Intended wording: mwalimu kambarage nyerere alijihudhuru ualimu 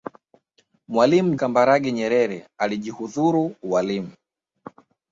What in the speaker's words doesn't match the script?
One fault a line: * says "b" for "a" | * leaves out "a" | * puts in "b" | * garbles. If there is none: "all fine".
all fine